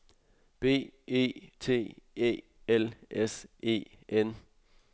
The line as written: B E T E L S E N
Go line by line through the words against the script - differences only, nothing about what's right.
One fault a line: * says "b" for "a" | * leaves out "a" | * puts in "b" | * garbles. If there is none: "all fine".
all fine